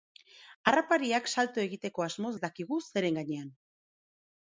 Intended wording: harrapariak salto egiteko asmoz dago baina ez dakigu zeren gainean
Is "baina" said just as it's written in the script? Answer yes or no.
no